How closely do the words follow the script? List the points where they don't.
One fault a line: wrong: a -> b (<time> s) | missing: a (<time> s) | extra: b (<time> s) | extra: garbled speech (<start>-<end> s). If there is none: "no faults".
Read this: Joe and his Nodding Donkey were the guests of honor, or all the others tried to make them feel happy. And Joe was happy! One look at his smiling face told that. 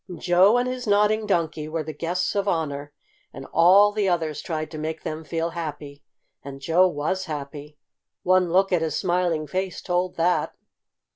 wrong: or -> and (3.3 s)